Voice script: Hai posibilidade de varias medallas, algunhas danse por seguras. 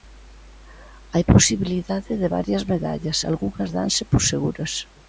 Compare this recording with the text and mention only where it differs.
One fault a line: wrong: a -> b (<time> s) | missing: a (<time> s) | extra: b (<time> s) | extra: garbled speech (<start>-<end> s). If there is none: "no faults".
no faults